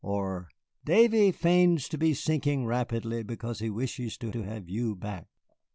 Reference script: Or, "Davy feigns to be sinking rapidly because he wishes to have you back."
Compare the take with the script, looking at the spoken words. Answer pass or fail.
fail